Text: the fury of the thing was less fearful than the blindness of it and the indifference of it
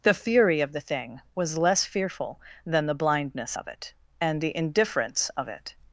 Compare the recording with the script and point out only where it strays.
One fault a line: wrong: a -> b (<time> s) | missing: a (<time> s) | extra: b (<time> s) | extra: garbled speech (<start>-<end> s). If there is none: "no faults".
no faults